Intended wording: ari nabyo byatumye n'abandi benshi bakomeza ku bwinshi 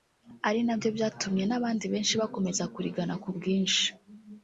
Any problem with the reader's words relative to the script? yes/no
yes